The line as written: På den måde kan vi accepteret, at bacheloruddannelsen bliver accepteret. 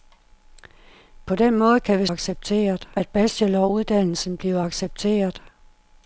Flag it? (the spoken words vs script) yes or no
no